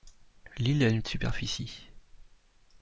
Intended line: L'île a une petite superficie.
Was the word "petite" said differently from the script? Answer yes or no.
yes